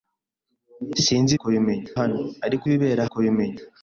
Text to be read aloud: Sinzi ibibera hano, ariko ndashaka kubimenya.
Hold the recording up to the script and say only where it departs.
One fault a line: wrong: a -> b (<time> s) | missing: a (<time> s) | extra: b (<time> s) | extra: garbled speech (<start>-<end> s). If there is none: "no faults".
wrong: ibibera -> kubimenya (1.4 s)
wrong: ndashaka -> ibibera (2.7 s)